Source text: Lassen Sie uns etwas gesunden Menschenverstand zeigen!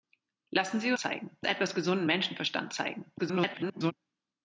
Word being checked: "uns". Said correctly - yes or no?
no